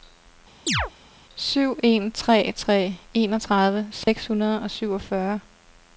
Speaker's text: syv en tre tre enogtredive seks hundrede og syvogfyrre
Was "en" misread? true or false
false